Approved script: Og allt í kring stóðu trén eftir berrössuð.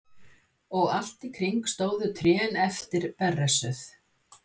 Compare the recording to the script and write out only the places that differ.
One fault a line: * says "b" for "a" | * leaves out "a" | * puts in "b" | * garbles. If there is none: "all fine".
all fine